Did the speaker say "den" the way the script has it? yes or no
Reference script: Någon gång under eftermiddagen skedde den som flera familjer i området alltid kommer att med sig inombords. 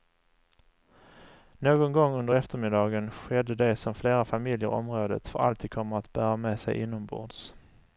no